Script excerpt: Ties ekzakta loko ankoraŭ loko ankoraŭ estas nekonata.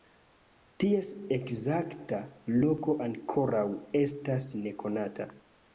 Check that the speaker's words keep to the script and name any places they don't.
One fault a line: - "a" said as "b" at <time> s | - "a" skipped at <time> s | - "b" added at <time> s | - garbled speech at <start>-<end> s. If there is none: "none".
- "loko ankoraŭ" skipped at 3.7 s